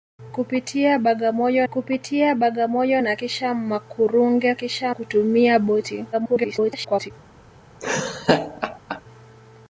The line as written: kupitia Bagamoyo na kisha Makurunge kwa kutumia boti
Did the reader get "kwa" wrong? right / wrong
wrong